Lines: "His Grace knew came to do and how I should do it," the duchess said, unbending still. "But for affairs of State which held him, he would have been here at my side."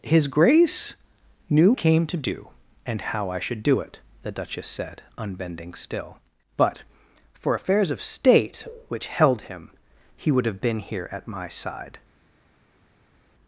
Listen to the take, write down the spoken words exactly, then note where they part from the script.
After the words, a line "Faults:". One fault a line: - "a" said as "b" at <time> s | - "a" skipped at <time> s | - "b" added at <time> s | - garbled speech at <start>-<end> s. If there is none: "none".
"His Grace knew came to do and how I should do it," the duchess said, unbending still. "But for affairs of State which held him, he would have been here at my side."
Faults:
none